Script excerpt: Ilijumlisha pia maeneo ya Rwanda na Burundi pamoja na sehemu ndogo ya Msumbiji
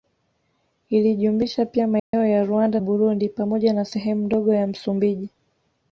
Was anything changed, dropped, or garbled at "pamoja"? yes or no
no